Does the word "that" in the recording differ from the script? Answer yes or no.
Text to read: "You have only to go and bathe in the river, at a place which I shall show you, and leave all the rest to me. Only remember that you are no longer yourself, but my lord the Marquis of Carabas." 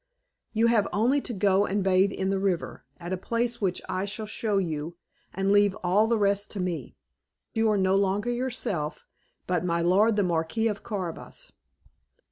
yes